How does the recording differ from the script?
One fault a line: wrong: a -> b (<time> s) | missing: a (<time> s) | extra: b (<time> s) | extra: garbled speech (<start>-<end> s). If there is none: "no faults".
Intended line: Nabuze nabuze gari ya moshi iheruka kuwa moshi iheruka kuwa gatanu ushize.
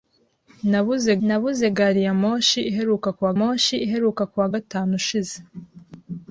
no faults